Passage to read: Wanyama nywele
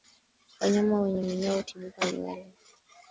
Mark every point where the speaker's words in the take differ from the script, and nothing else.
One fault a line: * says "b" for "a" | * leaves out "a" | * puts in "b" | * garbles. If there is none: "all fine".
* puts in "wenye minyoo hutibuka"